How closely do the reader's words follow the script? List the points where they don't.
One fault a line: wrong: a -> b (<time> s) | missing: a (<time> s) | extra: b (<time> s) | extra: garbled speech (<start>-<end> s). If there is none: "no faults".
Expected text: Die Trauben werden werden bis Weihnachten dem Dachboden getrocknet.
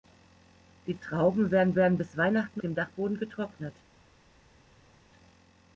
no faults